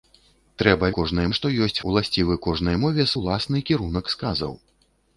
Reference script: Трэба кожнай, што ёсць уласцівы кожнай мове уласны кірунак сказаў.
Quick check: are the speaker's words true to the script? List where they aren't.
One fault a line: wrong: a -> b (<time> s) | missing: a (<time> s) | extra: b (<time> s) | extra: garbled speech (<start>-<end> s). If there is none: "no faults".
no faults